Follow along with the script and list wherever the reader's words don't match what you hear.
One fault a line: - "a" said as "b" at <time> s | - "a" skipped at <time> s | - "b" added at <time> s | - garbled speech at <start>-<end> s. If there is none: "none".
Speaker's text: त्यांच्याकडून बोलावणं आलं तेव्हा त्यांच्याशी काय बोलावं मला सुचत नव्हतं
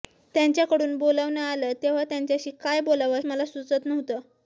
none